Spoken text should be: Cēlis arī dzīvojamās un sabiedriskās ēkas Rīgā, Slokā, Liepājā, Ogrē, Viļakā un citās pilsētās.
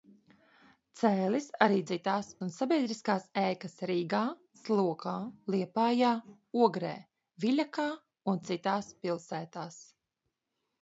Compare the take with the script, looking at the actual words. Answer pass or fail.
fail